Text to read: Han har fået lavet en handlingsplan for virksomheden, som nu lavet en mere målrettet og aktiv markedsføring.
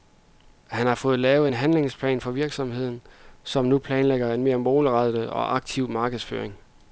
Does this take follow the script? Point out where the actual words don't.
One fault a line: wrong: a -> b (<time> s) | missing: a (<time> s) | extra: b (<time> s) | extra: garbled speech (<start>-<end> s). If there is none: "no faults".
wrong: lavet -> planlægger (3.8 s)